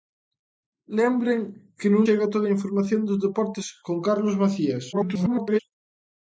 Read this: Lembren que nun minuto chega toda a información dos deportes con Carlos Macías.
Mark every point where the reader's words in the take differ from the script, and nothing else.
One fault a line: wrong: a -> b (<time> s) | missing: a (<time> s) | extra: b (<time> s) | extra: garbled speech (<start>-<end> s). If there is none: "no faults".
missing: minuto (2.0 s)
extra: garbled speech (4.9-5.6 s)